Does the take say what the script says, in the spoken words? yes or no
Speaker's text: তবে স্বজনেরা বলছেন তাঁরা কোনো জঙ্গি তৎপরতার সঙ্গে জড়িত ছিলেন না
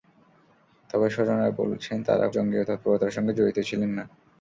no